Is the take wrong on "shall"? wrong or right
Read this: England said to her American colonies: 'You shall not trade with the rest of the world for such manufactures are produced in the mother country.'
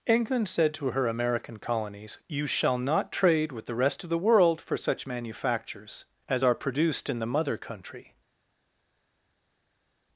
right